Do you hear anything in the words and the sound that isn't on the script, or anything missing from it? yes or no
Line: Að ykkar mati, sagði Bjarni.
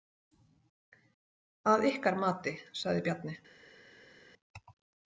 no